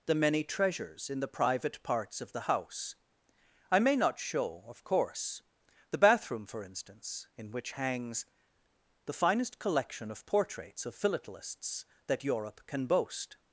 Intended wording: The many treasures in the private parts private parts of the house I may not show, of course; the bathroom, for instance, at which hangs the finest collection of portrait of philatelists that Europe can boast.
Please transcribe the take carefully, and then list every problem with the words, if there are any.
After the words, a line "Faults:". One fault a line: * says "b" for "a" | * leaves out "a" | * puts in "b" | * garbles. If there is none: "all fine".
The many treasures in the private parts of the house I may not show, of course; the bathroom, for instance, in which hangs the finest collection of portraits of philatelists that Europe can boast.
Faults:
* leaves out "private parts"
* says "in" for "at"
* says "portraits" for "portrait"